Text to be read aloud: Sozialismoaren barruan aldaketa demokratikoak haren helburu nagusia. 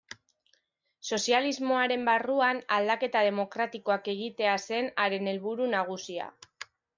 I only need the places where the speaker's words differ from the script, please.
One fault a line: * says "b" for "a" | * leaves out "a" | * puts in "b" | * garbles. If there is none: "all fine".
* puts in "egitea zen"